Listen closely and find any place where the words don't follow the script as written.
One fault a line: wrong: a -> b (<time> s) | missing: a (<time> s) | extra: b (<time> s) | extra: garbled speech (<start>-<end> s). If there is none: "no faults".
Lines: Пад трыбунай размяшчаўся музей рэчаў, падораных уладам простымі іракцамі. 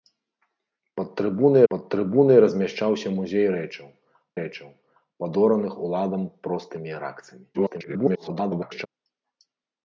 extra: пад трыбунай (1.7 s)
extra: рэчаў (4.4 s)
extra: garbled speech (7.5-8.9 s)